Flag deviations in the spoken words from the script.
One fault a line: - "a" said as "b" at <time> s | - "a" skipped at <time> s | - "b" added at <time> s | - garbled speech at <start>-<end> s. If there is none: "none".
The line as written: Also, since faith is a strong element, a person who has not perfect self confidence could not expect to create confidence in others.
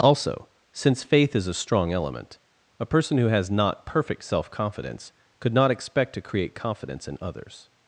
none